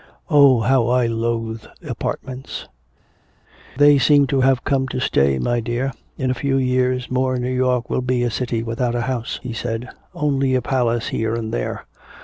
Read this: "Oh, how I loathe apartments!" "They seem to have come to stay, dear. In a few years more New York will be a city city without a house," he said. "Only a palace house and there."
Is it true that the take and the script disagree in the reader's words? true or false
true